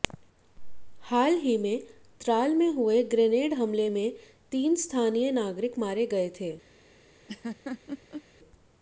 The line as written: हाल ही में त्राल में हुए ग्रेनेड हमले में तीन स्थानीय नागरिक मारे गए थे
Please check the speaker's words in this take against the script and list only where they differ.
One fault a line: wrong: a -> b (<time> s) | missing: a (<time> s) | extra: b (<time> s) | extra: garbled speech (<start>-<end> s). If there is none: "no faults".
no faults